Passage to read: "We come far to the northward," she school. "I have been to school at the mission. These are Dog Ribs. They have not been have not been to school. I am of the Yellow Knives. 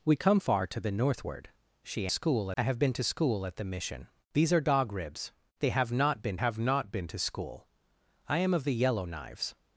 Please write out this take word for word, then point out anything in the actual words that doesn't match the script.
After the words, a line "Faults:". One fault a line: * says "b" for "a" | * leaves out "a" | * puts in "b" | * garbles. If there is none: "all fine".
"We come far to the northward," she school. "I have been to school at the mission. These are Dog Ribs. They have not been have not been to school. I am of the Yellow Knives.
Faults:
all fine